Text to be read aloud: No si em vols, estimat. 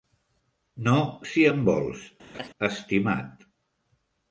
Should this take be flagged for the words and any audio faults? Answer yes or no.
yes